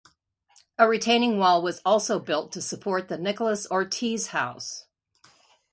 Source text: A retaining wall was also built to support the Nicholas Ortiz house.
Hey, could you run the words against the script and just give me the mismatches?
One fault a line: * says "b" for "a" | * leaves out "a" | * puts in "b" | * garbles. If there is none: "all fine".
all fine